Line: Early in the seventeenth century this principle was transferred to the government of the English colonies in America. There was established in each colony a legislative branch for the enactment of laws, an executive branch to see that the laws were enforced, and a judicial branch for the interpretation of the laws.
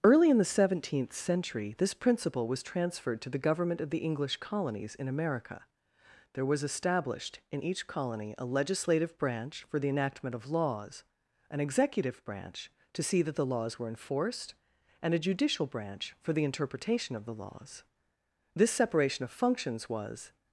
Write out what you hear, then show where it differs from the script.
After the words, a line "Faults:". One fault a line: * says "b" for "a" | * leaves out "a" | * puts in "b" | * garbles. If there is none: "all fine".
Early in the seventeenth century this principle was transferred to the government of the English colonies in America. There was established in each colony a legislative branch for the enactment of laws, an executive branch to see that the laws were enforced, and a judicial branch for the interpretation of the laws. This separation of functions was
Faults:
* puts in "This separation of functions was"